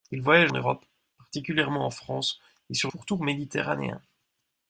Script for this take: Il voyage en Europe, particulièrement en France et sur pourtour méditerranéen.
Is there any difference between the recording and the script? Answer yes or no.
no